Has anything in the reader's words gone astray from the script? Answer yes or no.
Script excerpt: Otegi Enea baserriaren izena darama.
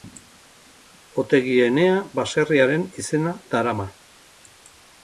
no